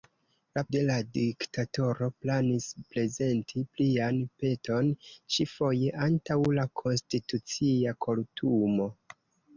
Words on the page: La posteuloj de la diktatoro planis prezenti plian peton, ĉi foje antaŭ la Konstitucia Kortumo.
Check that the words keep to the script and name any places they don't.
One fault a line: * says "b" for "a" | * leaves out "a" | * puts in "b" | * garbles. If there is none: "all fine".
* leaves out "posteuloj"